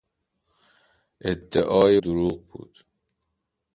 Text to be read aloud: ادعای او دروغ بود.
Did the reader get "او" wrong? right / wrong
wrong